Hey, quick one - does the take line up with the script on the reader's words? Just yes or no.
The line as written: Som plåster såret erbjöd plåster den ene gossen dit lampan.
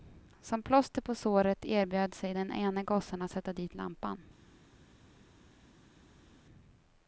no